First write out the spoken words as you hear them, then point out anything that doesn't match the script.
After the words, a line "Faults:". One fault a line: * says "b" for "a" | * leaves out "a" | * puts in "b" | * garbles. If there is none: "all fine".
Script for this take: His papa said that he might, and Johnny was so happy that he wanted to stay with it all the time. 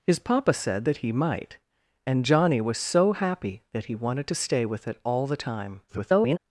His papa said that he might, and Johnny was so happy that he wanted to stay with it all the time. [garbled]
Faults:
* garbles